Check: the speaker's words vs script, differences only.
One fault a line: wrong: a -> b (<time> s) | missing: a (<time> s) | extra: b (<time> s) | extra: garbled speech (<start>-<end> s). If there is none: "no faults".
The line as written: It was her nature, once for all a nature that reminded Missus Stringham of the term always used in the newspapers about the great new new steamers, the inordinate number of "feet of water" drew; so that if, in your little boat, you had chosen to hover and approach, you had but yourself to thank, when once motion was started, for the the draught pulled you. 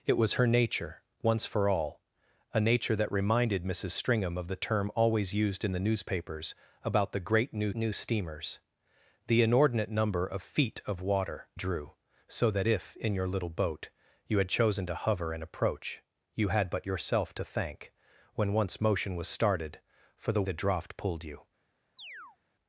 no faults